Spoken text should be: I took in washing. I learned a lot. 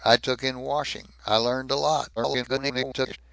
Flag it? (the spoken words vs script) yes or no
yes